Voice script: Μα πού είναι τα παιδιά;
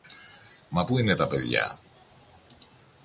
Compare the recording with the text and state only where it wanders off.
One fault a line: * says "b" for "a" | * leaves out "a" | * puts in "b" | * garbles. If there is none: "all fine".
all fine